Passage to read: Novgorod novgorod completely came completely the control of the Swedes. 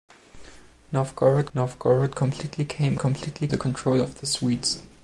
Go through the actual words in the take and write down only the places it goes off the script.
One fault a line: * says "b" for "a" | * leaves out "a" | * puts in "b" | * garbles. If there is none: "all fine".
all fine